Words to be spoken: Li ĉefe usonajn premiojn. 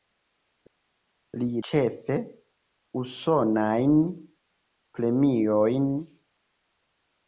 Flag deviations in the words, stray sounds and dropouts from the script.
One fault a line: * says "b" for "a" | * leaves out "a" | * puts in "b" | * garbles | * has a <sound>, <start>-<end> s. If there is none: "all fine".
all fine